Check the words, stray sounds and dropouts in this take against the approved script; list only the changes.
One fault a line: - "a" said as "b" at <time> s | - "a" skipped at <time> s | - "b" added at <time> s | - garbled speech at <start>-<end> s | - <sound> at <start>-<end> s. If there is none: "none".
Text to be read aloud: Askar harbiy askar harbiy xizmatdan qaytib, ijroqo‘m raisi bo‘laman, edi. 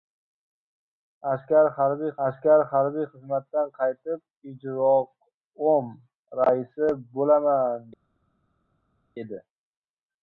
none